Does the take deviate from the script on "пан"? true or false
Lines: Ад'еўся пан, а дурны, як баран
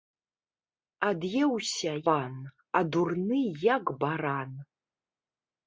false